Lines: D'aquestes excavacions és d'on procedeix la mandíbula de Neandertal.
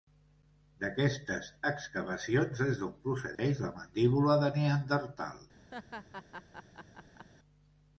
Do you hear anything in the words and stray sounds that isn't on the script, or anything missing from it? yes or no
yes